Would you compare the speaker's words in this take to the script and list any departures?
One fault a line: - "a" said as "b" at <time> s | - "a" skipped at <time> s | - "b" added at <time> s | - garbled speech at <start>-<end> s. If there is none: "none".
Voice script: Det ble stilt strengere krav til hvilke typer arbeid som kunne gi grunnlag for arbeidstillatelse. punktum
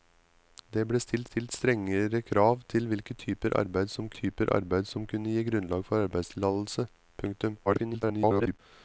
- "stilt" added at 1.3 s
- "typer arbeid som" added at 4.2 s
- garbled speech at 7.7-8.6 s